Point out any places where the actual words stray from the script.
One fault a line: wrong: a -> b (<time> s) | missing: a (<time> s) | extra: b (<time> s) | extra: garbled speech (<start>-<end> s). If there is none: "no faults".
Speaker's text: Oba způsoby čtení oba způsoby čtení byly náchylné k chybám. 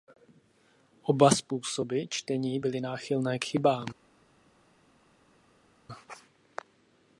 missing: oba způsoby čtení (2.6 s)